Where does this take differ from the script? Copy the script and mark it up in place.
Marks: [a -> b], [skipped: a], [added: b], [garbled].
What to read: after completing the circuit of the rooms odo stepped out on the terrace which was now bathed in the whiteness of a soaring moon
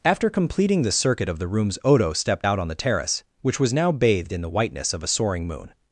after completing the circuit of the rooms odo stepped out on the terrace which was now bathed in the whiteness of a soaring moon